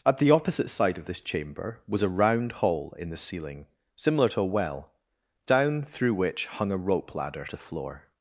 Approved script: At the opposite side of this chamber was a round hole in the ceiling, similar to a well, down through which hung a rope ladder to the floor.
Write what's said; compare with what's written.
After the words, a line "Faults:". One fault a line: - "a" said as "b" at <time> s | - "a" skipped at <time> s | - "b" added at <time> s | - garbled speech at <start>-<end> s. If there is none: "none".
At the opposite side of this chamber was a round hole in the ceiling, similar to a well, down through which hung a rope ladder to floor.
Faults:
- "the" skipped at 7.6 s